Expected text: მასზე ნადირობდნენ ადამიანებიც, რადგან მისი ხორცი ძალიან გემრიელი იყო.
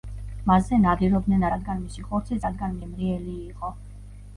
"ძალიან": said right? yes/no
no